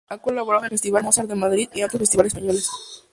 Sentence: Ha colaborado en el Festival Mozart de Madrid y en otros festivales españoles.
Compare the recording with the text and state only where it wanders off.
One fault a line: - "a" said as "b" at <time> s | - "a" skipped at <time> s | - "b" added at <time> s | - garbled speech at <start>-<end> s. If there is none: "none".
none